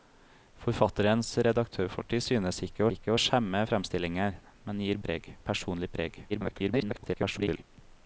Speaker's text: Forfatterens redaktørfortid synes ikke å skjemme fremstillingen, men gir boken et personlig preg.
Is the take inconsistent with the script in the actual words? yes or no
yes